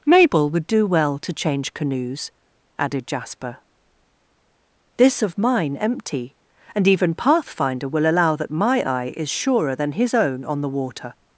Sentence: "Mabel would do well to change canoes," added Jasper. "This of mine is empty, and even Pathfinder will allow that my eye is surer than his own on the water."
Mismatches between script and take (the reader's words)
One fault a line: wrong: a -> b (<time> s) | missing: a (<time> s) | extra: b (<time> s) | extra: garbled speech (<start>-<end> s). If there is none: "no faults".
missing: is (5.8 s)